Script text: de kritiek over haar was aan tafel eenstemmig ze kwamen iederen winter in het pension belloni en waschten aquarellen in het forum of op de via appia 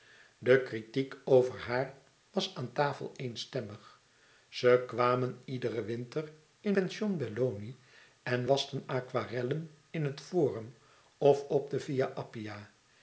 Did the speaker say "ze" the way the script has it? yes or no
yes